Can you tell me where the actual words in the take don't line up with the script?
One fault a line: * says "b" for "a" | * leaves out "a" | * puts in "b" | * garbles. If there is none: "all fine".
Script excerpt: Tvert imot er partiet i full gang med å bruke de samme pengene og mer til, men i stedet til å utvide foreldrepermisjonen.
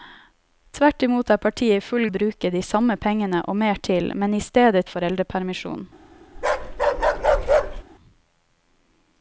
* leaves out "gang med"
* leaves out "til å utvide"